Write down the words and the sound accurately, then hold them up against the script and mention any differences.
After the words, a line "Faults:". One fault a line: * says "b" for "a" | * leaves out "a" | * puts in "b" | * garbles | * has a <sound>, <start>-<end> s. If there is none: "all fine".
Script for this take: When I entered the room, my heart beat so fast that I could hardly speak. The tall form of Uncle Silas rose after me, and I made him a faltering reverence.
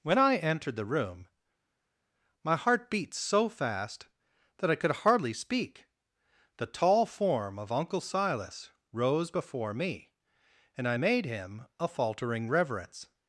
When I entered the room, my heart beat so fast that I could hardly speak. The tall form of Uncle Silas rose before me, and I made him a faltering reverence.
Faults:
* says "before" for "after"